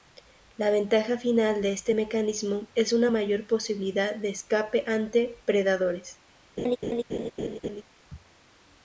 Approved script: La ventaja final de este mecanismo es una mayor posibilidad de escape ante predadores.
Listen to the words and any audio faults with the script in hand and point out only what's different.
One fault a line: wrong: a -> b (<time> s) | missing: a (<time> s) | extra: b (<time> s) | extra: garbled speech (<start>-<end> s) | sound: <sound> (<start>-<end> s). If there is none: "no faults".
sound: laugh (6.6-7.8 s)